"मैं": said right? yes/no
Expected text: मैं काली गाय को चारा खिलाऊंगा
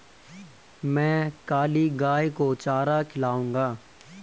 yes